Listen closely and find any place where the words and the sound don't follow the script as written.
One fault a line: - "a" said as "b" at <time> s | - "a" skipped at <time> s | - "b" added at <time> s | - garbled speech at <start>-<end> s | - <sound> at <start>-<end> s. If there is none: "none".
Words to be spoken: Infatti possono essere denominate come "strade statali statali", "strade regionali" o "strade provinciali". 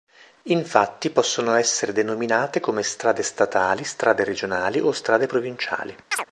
- "statali" skipped at 3.8 s
- chirp at 6.1-6.3 s